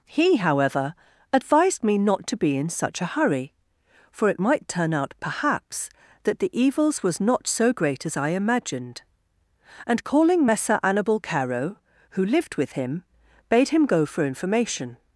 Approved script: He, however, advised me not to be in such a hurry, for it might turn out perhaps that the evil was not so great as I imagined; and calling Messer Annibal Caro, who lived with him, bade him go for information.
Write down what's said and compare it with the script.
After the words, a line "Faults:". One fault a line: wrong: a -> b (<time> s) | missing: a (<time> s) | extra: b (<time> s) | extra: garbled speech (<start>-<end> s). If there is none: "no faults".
He, however, advised me not to be in such a hurry, for it might turn out perhaps that the evils was not so great as I imagined; and calling Messer Annibal Caro, who lived with him, bade him go for information.
Faults:
wrong: evil -> evils (6.5 s)